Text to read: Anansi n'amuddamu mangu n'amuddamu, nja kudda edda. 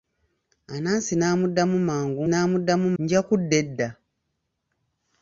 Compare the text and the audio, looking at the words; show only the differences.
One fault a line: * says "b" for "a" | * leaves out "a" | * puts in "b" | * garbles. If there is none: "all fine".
all fine